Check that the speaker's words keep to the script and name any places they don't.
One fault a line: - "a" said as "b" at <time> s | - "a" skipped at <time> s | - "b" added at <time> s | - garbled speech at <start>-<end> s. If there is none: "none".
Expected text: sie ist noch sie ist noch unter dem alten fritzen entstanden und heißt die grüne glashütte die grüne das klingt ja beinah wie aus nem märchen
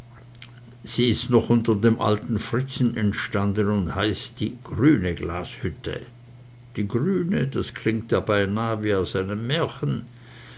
- "sie ist noch" skipped at 1.5 s